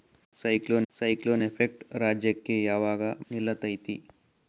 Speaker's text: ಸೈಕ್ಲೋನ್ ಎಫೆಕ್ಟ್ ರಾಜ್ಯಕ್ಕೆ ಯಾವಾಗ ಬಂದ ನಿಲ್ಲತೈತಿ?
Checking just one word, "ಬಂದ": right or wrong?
wrong